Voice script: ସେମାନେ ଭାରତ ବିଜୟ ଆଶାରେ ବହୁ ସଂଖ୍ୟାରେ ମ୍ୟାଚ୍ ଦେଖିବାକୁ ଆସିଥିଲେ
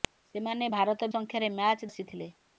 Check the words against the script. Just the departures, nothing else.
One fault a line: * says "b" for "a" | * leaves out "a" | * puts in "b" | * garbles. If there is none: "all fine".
* leaves out "ବିଜୟ ଆଶାରେ ବହୁ"
* leaves out "ଦେଖିବାକୁ"